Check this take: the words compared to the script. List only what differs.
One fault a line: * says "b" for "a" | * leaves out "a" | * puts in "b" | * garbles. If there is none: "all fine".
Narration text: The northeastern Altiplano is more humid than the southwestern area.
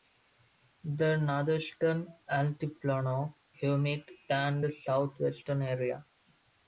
* leaves out "is more"